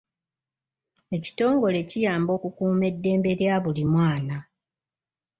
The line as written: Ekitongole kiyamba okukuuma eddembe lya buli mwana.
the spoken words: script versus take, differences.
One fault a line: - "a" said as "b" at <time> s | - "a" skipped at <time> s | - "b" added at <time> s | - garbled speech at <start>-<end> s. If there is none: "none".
none